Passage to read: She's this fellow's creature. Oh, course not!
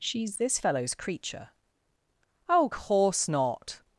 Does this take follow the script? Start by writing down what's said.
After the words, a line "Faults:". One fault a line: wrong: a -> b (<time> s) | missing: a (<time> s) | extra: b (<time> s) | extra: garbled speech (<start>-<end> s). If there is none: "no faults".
She's this fellow's creature. Oh, course not!
Faults:
no faults